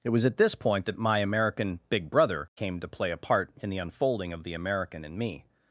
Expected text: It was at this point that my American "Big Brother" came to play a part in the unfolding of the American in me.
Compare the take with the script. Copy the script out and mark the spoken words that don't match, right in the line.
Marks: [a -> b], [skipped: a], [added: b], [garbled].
It was at this point that my American "Big Brother" came to play a part in the unfolding of the American in me.